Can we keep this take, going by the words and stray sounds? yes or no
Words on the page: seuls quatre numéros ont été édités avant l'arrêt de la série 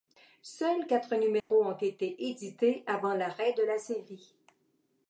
no